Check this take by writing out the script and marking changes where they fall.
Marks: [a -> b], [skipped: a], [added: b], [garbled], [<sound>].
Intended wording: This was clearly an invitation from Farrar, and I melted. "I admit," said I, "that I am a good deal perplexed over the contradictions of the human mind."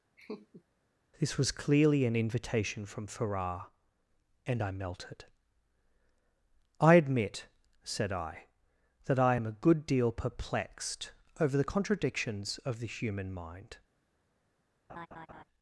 [laugh] This was clearly an invitation from Farrar, and I melted. "I admit," said I, "that I am a good deal perplexed over the contradictions of the human mind." [laugh]